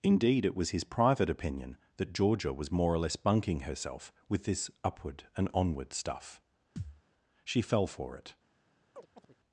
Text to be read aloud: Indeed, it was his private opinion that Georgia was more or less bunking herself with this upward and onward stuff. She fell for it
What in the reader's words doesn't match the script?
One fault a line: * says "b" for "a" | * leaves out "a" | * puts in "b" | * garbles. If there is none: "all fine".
all fine